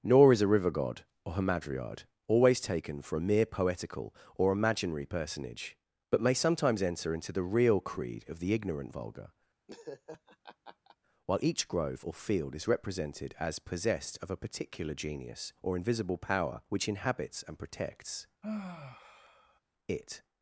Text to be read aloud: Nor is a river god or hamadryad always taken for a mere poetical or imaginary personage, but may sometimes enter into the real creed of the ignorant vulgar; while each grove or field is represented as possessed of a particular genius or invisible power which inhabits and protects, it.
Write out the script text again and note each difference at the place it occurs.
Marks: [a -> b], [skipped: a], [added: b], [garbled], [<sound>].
Nor is a river god or hamadryad always taken for a mere poetical or imaginary personage, but may sometimes enter into the real creed of the ignorant vulgar; [laugh] while each grove or field is represented as possessed of a particular genius or invisible power which inhabits and protects, [sigh] it.